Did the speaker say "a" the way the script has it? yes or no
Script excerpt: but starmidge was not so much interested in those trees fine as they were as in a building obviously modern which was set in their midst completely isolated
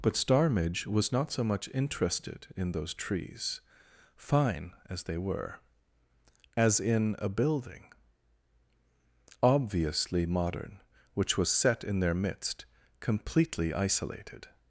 yes